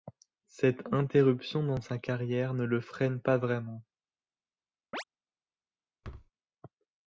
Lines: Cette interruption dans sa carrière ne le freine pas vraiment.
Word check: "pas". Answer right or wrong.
right